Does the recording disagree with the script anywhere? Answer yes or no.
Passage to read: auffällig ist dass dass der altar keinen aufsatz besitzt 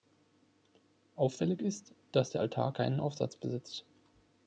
yes